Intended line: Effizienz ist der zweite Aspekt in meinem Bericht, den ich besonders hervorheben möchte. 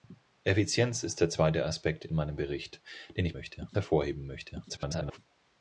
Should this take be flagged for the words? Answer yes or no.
yes